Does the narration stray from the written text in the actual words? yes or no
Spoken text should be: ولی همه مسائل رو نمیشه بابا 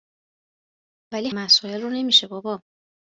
yes